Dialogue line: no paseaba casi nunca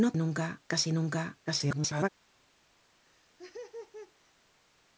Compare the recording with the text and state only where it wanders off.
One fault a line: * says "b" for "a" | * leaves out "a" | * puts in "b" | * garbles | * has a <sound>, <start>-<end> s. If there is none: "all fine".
* says "nunca" for "paseaba"
* garbles
* has a laugh, 3.0-4.3 s